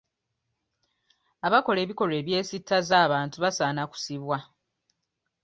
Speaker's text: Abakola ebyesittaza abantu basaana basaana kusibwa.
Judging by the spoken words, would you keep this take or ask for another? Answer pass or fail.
fail